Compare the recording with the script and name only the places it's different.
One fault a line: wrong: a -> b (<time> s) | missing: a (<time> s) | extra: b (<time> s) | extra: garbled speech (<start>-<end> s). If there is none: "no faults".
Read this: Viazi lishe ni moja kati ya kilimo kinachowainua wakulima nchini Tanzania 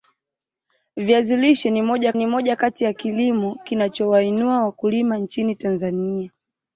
extra: ni moja (2.1 s)